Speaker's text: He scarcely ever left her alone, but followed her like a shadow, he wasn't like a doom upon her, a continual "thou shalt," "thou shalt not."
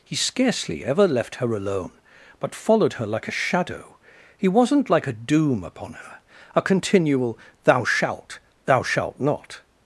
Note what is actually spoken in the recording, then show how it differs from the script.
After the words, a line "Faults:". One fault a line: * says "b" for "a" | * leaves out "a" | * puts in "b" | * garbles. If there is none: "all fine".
He scarcely ever left her alone, but followed her like a shadow, he wasn't like a doom upon her, a continual "thou shalt," "thou shalt not."
Faults:
all fine